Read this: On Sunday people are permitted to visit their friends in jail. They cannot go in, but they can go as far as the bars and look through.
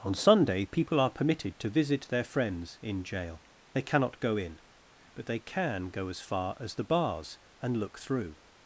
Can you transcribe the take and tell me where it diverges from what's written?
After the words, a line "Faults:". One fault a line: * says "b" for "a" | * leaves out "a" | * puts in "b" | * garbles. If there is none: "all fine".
On Sunday people are permitted to visit their friends in jail. They cannot go in, but they can go as far as the bars and look through.
Faults:
all fine